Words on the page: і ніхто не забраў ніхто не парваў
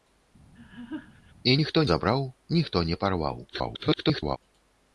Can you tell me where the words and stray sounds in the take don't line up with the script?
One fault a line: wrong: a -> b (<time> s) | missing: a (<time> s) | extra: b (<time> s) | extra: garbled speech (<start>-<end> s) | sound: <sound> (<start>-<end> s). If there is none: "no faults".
sound: laugh (0.5-1.3 s)
missing: не (1.8 s)
extra: garbled speech (3.5-4.4 s)